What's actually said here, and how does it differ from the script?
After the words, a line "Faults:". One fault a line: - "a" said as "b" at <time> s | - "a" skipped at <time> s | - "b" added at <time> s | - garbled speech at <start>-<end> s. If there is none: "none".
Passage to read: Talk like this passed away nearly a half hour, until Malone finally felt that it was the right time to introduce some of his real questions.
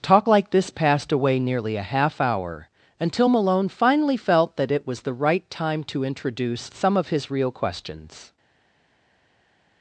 Talk like this passed away nearly a half hour, until Malone finally felt that it was the right time to introduce some of his real questions.
Faults:
none